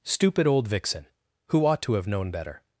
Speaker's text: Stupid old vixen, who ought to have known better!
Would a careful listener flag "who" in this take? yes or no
no